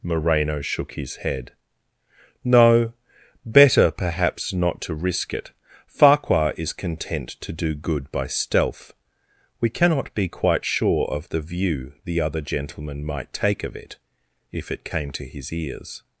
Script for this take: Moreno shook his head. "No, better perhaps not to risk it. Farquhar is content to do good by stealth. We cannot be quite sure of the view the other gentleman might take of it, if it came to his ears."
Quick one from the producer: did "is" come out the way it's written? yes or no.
yes